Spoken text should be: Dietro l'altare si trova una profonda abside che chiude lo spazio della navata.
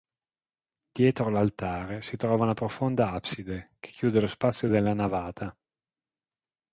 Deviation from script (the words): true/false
false